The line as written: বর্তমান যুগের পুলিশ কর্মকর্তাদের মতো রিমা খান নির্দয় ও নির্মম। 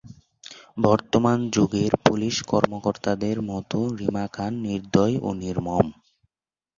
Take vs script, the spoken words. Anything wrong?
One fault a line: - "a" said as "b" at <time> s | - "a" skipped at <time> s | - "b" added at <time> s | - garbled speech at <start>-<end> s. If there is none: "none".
none